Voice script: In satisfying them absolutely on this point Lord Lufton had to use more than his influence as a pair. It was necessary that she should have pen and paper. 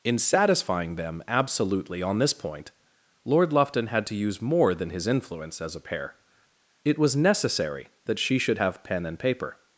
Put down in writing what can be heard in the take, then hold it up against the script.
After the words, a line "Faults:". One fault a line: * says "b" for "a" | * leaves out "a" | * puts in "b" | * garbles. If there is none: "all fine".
In satisfying them absolutely on this point Lord Lufton had to use more than his influence as a pair. It was necessary that she should have pen and paper.
Faults:
all fine